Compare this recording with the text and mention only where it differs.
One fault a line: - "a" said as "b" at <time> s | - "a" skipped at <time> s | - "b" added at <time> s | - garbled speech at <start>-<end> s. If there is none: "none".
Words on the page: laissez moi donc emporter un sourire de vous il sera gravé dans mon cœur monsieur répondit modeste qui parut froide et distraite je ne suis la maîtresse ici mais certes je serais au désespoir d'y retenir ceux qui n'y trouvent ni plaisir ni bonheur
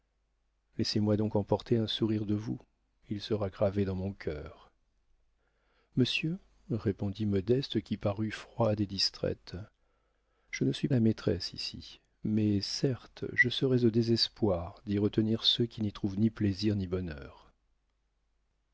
none